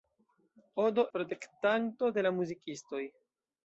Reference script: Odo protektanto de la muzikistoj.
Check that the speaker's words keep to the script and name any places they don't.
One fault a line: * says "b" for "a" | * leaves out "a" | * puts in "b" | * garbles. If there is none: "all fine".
all fine